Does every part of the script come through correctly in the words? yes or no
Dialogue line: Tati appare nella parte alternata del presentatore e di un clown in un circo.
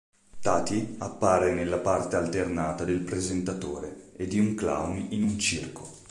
yes